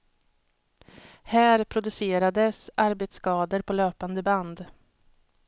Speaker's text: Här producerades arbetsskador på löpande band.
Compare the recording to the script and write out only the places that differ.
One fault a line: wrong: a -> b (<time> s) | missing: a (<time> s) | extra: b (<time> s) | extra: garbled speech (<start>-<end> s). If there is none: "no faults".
no faults